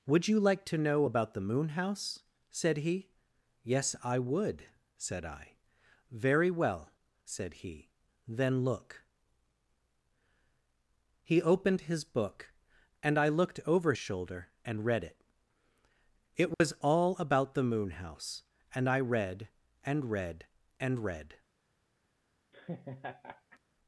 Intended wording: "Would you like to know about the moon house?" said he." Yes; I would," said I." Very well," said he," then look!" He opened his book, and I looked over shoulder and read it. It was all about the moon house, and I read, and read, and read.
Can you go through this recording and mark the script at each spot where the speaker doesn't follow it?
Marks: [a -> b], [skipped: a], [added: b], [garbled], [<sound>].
"Would you like to know about the moon house?" said he." Yes; I would," said I." Very well," said he," then look!" He opened his book, and I looked over shoulder and read it. It was [dropout] all about the moon house, and I read, and read, and read. [laugh]